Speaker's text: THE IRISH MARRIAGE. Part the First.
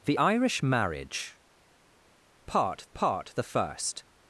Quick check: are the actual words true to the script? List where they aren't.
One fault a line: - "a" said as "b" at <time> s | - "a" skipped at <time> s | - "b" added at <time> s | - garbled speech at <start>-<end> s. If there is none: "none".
- "part" added at 2.9 s